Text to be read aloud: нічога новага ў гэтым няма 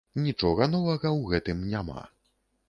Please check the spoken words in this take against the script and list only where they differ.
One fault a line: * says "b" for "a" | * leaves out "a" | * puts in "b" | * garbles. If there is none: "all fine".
all fine